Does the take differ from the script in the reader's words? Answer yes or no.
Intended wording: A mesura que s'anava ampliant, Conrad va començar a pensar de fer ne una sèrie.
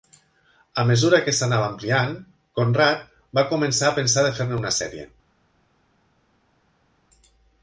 no